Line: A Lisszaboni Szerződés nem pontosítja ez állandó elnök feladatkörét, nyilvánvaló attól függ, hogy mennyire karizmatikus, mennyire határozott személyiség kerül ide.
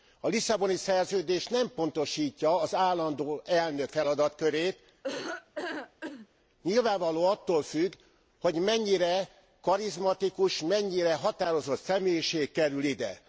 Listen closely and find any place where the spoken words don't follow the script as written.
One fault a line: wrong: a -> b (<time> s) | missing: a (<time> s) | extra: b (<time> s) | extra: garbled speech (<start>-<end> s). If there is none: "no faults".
wrong: ez -> az (2.6 s)